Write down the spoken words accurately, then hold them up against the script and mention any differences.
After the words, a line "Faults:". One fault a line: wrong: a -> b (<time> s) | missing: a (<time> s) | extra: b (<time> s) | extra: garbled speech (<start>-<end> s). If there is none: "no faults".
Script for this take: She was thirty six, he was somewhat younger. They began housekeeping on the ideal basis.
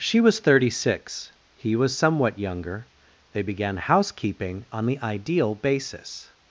She was thirty six, he was somewhat younger. They began housekeeping on the ideal basis.
Faults:
no faults